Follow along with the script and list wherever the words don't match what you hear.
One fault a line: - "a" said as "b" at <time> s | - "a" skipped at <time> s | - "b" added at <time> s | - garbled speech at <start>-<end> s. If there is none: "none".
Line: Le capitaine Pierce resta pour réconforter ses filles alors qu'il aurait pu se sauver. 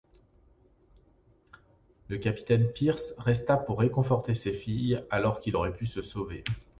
none